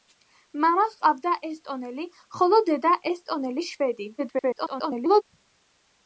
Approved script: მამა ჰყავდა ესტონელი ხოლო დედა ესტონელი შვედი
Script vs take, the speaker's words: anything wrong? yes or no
yes